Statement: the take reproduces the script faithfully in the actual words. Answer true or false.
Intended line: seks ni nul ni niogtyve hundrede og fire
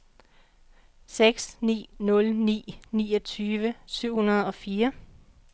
false